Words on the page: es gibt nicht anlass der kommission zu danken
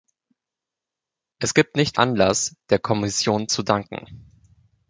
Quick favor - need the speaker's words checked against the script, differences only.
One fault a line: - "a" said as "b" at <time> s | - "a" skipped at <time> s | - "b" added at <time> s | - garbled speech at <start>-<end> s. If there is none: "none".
none